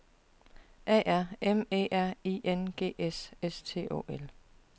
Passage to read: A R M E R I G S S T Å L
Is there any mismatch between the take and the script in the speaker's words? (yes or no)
yes